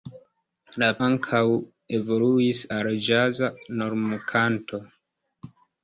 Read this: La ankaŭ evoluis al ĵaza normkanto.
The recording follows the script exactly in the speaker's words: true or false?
true